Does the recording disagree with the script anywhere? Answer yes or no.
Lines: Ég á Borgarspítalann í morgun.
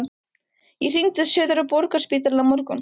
yes